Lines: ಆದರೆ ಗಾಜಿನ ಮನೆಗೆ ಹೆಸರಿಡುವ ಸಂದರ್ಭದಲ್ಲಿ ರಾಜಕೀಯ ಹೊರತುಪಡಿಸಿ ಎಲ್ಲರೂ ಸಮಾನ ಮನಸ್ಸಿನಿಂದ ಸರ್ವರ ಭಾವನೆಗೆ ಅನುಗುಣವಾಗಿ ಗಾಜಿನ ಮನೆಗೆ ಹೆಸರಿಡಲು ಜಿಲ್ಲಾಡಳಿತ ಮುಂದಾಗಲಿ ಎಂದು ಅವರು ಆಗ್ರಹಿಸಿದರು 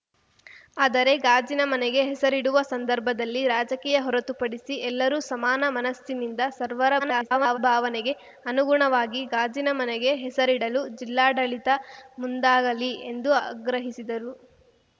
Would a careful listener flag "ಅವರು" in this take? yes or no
yes